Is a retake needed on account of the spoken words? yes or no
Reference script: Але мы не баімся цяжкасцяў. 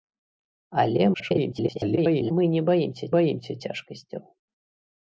yes